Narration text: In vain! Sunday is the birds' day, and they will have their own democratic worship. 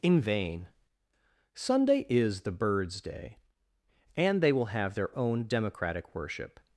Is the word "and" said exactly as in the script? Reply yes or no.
yes